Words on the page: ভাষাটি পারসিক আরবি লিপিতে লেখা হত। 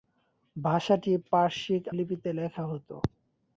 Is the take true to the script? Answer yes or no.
no